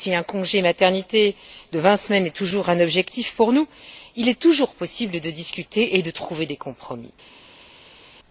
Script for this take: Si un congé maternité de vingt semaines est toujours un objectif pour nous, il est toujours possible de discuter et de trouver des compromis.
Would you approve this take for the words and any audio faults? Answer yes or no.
yes